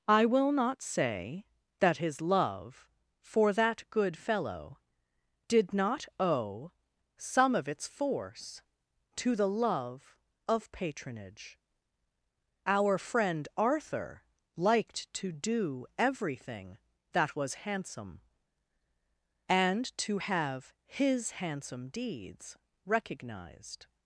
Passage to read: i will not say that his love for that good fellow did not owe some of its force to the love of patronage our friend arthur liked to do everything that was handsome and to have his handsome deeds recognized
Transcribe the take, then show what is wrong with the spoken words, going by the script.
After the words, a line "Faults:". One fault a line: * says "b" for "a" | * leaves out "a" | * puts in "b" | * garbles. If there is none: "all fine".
i will not say that his love for that good fellow did not owe some of its force to the love of patronage our friend arthur liked to do everything that was handsome and to have his handsome deeds recognized
Faults:
all fine